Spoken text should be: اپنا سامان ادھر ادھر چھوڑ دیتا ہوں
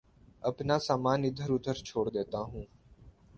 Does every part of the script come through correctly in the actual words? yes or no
yes